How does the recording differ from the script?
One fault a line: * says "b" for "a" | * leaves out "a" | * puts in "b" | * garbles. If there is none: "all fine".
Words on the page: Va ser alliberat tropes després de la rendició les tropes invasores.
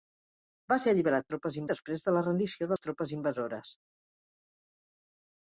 all fine